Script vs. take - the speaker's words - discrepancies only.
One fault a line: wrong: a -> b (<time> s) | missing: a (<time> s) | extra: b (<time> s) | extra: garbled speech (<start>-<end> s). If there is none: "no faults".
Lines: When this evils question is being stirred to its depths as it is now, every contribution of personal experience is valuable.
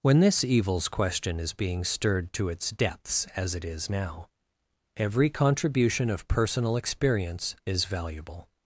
no faults